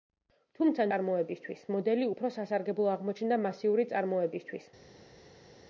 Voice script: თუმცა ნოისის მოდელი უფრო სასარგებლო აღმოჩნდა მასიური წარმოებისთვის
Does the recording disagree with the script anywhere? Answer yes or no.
yes